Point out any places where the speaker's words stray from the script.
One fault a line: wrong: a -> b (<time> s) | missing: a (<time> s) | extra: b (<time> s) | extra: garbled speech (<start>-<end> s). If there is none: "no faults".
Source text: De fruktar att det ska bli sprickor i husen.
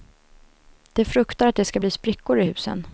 no faults